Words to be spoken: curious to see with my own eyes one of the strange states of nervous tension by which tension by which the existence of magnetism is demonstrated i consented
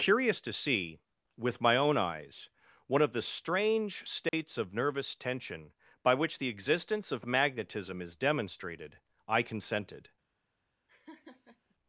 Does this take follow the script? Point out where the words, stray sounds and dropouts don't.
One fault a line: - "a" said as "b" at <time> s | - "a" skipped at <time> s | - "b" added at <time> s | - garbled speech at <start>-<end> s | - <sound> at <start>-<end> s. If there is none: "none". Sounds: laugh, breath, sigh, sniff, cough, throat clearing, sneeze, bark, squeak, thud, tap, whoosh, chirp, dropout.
- dropout at 4.3-4.3 s
- "tension by which" skipped at 6.4 s
- laugh at 10.9-11.8 s